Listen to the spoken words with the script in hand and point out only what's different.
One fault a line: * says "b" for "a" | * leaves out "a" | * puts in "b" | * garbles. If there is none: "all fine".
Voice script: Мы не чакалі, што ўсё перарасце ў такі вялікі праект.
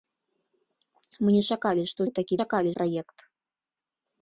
* leaves out "ўсё перарасце"
* says "чакалі" for "вялікі"